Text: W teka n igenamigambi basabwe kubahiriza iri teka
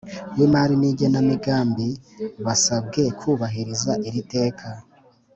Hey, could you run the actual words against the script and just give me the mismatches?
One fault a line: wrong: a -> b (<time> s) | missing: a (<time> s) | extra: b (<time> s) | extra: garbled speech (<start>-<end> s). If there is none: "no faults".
wrong: teka -> imari (0.5 s)